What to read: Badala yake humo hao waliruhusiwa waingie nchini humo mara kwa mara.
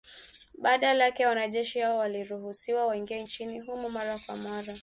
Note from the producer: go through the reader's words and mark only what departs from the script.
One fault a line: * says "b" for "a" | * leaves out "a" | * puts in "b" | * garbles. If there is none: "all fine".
* says "wanajeshi" for "humo"